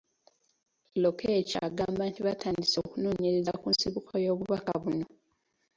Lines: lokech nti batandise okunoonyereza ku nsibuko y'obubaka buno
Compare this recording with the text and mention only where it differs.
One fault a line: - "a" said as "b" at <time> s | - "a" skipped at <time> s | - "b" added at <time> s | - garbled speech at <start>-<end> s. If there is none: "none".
- "agamba" added at 1.7 s